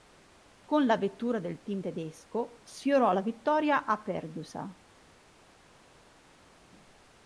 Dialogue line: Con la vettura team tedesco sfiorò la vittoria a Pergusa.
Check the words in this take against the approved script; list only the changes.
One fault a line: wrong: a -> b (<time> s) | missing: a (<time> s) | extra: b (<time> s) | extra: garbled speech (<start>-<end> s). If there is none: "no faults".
extra: del (1.4 s)